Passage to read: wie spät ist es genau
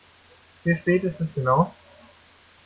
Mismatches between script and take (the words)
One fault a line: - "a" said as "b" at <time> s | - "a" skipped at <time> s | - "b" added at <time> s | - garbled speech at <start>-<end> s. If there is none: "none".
none